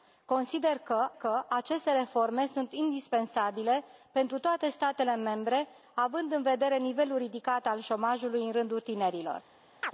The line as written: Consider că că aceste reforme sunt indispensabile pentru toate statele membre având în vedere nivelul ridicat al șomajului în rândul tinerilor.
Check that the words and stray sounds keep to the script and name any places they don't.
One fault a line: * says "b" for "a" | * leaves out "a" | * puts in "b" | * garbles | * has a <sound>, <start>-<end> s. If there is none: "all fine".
* has a chirp, 9.8-9.9 s